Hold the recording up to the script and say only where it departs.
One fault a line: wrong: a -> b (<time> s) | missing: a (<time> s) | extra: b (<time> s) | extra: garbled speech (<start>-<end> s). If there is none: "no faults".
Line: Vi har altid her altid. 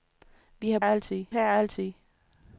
no faults